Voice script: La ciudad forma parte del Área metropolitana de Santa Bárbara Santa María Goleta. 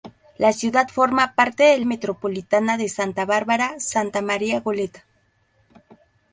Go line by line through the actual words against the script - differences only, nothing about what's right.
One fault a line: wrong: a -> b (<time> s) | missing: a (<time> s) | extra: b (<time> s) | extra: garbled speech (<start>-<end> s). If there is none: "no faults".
missing: Área (1.9 s)